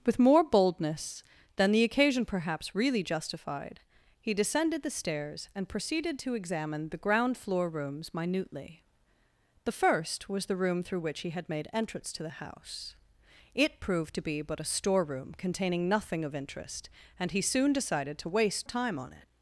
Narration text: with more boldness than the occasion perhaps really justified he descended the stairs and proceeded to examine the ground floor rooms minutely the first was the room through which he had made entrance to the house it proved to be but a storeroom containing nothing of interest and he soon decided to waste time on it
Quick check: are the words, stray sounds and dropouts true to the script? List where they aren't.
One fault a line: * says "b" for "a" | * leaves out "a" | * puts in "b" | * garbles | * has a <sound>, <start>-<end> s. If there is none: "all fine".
all fine